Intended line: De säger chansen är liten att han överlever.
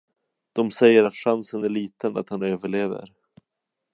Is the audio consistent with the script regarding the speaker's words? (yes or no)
no